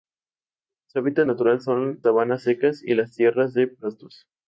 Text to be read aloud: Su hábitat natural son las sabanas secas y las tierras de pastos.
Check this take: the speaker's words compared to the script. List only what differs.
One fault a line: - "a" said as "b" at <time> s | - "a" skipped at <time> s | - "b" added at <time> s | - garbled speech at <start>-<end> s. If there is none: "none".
- "las" skipped at 2.0 s